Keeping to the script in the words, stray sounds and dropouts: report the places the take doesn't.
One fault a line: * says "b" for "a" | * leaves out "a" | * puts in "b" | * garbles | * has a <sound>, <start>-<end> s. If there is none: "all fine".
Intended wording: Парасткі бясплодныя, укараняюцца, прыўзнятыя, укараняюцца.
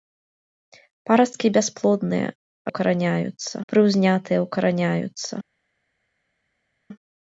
all fine